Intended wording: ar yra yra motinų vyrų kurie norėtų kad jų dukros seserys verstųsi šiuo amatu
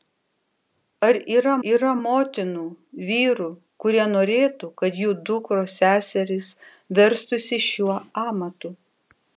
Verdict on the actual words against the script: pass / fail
pass